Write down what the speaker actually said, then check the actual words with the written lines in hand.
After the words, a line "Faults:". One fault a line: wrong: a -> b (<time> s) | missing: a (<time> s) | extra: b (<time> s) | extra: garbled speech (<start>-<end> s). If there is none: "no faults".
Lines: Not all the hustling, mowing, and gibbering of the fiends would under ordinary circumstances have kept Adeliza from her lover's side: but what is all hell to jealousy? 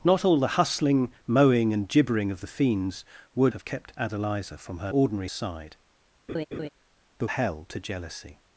Not all the hustling, mowing, and gibbering of the fiends would have kept Adeliza from her ordinary side: but hell to jealousy?
Faults:
missing: under ordinary circumstances (3.5 s)
wrong: lover's -> ordinary (4.9 s)
missing: what is all (7.3 s)